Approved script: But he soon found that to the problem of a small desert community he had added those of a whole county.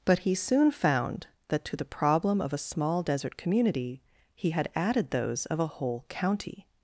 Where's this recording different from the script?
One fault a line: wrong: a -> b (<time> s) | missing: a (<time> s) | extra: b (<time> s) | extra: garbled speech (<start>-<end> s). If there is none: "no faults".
no faults